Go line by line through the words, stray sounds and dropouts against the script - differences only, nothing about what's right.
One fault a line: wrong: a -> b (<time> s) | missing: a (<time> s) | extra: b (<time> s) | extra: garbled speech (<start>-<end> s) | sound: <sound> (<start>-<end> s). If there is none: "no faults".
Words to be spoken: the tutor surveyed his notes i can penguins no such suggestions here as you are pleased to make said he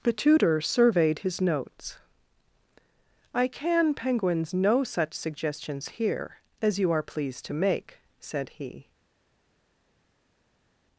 no faults